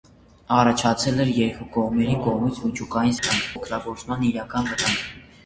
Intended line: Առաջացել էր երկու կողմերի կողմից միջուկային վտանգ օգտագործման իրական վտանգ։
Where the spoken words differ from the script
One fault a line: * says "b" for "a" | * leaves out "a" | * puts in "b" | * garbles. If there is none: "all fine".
all fine